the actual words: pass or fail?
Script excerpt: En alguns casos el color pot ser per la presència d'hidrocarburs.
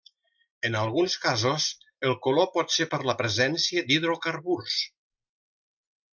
pass